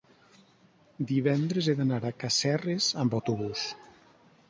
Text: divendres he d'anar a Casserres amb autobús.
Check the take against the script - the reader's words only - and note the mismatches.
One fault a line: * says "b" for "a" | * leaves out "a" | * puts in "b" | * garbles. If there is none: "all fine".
all fine